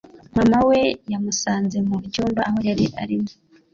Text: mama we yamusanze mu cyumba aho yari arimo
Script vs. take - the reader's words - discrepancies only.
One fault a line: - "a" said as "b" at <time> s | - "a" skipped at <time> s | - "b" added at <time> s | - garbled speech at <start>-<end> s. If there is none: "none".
none